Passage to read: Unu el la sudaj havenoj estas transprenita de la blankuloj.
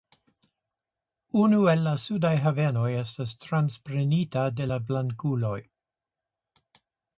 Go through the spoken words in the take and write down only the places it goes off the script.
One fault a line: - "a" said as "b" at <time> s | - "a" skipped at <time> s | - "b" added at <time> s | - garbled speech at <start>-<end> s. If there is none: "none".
none